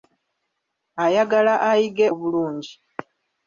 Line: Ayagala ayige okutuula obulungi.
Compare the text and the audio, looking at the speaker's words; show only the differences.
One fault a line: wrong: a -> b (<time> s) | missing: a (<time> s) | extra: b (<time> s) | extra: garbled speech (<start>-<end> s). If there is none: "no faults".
missing: okutuula (2.1 s)